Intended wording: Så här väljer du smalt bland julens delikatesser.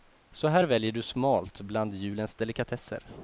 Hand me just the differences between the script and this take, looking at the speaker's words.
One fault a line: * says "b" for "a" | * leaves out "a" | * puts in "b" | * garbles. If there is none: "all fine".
all fine